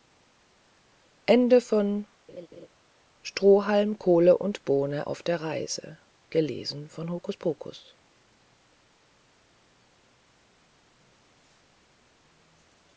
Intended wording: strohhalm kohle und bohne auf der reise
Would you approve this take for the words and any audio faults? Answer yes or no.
no